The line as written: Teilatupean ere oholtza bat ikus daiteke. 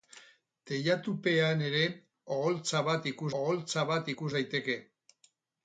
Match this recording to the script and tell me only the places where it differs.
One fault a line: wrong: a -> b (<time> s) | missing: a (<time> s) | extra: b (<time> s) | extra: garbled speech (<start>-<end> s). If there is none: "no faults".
extra: oholtza bat ikus (3.4 s)